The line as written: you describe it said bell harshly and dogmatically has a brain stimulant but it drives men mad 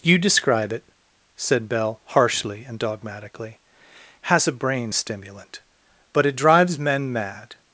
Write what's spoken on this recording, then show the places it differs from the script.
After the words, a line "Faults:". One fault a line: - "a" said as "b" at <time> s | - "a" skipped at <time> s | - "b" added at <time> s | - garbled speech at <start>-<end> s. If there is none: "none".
you describe it said bell harshly and dogmatically has a brain stimulant but it drives men mad
Faults:
none